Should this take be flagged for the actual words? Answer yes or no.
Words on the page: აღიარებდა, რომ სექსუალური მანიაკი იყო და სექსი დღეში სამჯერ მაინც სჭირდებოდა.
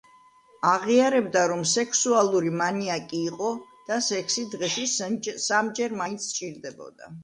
no